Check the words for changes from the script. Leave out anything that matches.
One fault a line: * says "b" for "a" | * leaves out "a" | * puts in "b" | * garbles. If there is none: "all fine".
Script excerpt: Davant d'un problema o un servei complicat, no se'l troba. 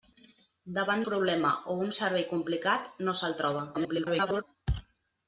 * leaves out "d'un"
* garbles